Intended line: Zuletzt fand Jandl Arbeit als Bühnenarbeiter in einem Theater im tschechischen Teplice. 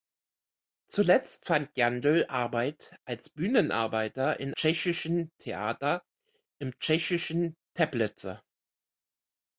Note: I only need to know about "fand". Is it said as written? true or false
true